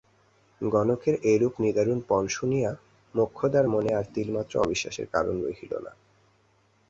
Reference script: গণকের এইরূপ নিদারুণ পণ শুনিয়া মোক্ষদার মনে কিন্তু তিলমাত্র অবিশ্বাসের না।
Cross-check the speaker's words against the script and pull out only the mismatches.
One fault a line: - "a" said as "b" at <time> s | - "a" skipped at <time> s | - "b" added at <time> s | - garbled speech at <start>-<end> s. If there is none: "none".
- "কিন্তু" said as "আর" at 3.9 s
- "কারণ রহিল" added at 5.1 s